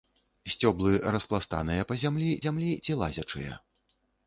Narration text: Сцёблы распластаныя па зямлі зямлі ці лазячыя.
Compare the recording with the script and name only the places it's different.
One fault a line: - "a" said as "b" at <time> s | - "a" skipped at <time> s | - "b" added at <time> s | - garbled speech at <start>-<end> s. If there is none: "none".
none